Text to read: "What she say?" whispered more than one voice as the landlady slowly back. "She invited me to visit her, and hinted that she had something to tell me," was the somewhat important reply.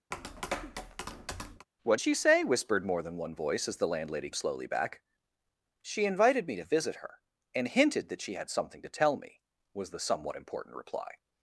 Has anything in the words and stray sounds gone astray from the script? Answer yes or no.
yes